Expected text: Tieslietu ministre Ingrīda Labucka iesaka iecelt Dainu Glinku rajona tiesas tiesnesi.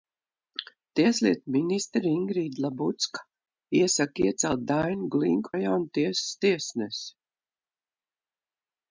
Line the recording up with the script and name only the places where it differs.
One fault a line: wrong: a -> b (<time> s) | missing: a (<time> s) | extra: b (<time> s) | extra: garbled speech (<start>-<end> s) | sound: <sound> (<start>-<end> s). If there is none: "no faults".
no faults